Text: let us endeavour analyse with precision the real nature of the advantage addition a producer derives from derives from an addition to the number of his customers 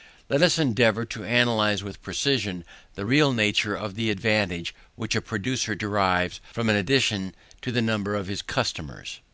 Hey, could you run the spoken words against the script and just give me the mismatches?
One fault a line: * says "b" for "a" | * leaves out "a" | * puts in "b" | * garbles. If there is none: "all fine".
* puts in "to"
* says "which" for "addition"
* leaves out "derives from"